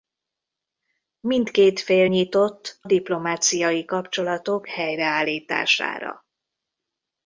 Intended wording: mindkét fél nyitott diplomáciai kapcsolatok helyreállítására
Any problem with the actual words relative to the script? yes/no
no